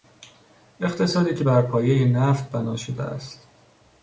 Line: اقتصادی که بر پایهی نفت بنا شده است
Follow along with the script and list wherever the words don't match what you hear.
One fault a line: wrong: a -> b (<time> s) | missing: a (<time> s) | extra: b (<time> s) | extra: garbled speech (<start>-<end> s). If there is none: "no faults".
no faults